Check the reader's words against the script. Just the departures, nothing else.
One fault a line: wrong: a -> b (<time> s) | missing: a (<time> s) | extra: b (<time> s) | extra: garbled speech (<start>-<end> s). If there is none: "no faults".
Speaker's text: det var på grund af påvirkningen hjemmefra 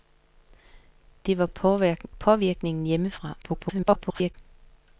missing: på grund (1.4 s)
extra: garbled speech (3.4-4.3 s)